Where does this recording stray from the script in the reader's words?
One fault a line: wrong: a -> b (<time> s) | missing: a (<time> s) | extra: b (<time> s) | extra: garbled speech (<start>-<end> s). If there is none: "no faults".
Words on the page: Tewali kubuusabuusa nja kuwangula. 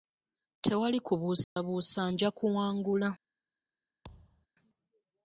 no faults